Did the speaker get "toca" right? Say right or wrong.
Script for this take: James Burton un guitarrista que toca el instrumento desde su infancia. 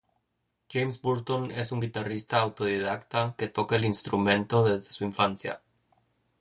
right